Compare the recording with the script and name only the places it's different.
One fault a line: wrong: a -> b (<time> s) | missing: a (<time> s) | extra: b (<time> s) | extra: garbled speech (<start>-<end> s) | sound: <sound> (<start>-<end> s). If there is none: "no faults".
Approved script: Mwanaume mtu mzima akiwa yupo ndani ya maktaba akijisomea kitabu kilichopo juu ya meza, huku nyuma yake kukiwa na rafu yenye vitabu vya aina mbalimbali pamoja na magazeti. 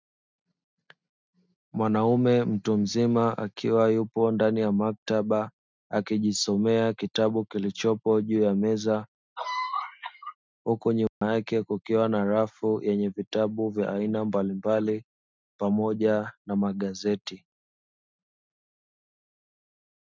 sound: cough (9.4-10.4 s)
sound: dropout (11.1-11.2 s)